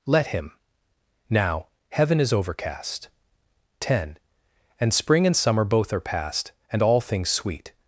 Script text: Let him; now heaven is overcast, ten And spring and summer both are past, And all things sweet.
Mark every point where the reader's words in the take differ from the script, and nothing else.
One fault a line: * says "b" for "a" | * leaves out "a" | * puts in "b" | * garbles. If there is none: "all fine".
all fine